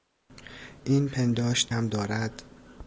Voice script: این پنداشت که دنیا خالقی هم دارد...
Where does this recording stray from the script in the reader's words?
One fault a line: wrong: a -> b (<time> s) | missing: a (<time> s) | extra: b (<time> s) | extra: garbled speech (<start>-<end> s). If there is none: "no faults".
missing: که دنیا خالقی (1.7 s)